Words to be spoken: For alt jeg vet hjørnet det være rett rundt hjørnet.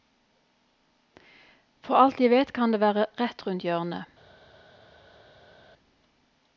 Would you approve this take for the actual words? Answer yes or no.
no